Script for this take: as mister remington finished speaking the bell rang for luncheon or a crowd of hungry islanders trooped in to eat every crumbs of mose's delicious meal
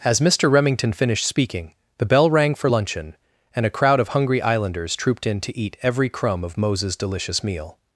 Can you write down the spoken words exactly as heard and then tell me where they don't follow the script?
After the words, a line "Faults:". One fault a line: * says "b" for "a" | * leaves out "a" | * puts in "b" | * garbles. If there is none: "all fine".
as mister remington finished speaking the bell rang for luncheon and a crowd of hungry islanders trooped in to eat every crumb of mose's delicious meal
Faults:
* says "and" for "or"
* says "crumb" for "crumbs"